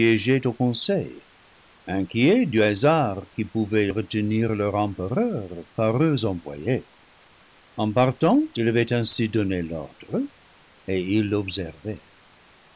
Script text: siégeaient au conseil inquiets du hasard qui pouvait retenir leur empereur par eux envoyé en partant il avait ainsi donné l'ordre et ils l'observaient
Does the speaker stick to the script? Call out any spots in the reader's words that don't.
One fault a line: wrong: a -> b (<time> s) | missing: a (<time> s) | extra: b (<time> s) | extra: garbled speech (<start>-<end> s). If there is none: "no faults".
no faults